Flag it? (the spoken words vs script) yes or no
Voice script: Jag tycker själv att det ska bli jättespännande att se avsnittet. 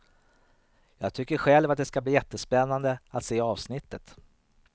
no